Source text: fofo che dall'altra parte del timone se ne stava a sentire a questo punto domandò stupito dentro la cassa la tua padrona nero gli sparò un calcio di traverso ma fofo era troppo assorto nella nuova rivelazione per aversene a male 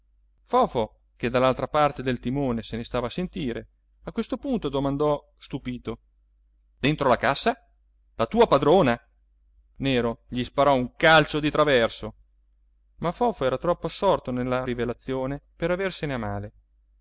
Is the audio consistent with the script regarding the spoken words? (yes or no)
no